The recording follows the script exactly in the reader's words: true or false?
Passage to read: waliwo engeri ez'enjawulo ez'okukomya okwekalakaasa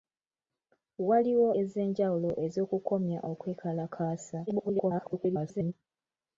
false